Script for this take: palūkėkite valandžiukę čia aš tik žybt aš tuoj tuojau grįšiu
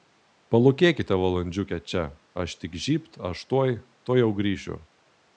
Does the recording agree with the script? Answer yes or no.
yes